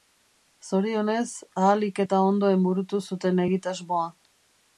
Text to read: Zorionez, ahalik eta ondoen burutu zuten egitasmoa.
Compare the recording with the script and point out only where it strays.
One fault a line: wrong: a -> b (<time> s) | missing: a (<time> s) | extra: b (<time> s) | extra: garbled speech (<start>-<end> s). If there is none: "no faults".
no faults